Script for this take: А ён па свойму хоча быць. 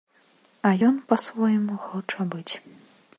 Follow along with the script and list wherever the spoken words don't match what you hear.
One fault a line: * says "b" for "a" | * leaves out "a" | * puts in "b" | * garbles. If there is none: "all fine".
all fine